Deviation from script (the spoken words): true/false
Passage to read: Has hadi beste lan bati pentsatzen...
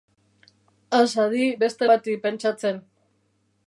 true